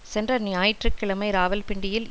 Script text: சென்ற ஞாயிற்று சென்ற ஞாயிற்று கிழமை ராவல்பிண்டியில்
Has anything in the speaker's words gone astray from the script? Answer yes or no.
yes